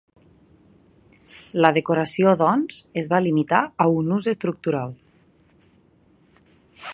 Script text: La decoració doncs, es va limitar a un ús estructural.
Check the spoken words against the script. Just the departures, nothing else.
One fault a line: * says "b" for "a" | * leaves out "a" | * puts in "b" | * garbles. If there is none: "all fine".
all fine